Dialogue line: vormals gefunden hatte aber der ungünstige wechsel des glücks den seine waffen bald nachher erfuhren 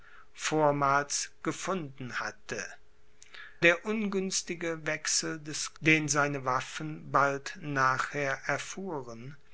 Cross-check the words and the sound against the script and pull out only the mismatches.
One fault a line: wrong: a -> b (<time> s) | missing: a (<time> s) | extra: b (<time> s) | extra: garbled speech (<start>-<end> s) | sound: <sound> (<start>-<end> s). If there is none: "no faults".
missing: aber (2.7 s)
missing: glücks (5.7 s)